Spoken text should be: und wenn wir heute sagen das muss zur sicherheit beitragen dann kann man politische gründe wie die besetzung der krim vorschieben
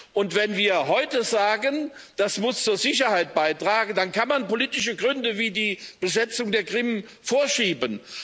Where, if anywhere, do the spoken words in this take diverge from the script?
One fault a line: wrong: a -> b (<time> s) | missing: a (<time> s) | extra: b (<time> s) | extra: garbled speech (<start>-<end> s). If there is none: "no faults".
no faults